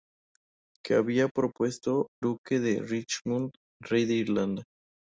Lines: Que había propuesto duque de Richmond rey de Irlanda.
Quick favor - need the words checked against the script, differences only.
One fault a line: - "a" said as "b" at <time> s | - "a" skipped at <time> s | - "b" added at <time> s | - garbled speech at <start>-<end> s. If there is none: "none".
none